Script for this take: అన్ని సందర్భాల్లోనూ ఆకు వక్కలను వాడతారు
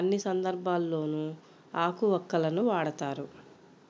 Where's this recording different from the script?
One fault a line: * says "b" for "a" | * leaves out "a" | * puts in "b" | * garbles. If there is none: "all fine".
all fine